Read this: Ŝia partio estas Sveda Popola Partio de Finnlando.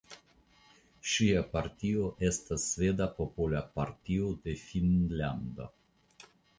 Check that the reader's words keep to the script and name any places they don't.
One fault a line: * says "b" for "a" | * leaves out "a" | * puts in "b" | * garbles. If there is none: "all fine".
all fine